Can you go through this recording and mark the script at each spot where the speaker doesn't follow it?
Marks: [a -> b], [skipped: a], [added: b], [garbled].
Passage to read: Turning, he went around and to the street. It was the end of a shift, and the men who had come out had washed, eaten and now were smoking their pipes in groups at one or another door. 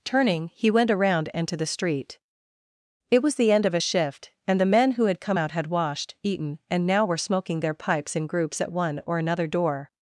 Turning, he went around and to the street. It was the end of a shift, and the men who had come out had washed, eaten and now were smoking their pipes in groups at one or another door.